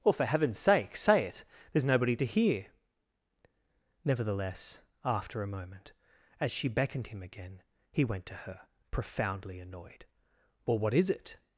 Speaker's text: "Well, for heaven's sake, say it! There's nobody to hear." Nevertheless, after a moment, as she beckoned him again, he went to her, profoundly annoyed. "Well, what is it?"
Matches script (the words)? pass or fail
pass